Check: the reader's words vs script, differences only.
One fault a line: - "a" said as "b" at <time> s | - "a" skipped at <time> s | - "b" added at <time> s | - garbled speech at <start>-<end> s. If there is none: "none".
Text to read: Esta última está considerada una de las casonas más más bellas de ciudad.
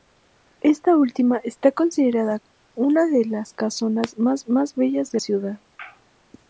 none